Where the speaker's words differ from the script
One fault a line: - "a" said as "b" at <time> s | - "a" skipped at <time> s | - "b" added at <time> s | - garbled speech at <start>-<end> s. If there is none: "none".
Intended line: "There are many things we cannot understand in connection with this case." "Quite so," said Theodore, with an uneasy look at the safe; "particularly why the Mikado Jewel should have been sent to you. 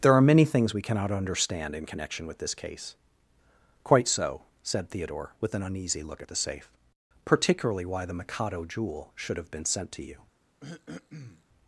none